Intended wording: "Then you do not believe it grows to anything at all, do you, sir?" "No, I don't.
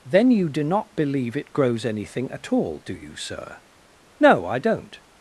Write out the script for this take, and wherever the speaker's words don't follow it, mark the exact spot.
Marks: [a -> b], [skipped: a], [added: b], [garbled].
"Then you do not believe it grows [skipped: to] anything at all, do you, sir?" "No, I don't.